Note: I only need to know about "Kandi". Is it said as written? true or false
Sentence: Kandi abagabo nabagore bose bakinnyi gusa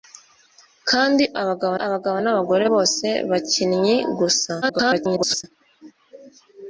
true